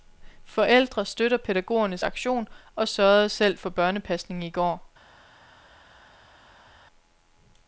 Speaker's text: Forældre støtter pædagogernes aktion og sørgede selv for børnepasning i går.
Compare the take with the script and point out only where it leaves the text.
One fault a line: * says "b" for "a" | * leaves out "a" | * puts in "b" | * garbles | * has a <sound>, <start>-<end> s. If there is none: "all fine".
all fine